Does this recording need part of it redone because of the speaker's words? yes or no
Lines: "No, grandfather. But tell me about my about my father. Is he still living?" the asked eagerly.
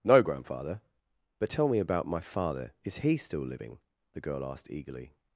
yes